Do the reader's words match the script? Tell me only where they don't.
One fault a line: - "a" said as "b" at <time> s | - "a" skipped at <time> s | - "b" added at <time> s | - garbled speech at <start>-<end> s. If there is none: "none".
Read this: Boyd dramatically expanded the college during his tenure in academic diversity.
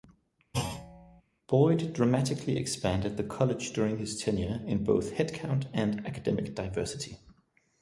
- "both headcount and" added at 4.8 s